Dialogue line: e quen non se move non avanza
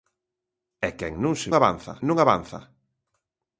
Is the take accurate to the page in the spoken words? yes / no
no